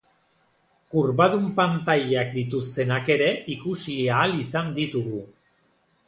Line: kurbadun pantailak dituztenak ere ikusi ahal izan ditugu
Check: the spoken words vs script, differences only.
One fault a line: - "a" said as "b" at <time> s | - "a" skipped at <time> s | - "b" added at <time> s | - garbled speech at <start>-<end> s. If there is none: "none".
none